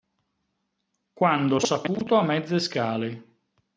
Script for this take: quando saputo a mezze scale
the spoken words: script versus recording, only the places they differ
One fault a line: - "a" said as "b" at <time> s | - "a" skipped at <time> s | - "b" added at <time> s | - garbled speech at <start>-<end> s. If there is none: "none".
none